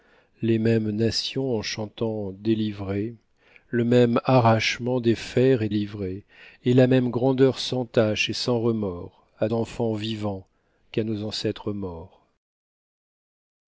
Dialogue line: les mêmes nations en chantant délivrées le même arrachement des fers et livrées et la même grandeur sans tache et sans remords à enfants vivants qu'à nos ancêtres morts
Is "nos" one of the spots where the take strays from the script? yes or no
no